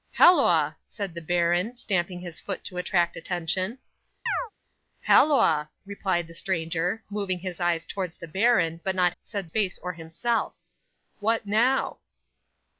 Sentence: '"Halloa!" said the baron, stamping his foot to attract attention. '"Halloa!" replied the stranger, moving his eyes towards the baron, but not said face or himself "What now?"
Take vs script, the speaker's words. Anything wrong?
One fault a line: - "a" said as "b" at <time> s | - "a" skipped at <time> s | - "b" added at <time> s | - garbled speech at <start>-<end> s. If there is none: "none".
none